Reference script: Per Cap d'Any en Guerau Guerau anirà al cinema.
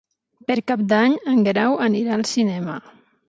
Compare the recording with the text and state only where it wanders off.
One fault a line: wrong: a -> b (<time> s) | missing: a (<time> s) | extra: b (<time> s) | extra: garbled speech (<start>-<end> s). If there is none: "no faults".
missing: Guerau (1.8 s)